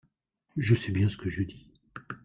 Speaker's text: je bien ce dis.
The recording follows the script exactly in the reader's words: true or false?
false